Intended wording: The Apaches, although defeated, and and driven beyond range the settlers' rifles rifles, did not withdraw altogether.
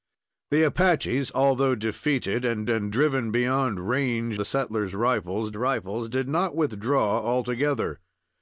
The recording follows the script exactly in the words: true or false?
true